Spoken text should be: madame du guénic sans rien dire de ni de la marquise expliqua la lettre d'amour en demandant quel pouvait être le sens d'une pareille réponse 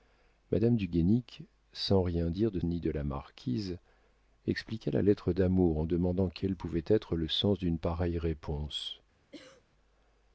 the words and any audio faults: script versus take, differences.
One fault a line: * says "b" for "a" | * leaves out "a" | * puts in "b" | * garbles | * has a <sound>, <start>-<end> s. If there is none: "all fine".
* has a cough, 9.3-9.6 s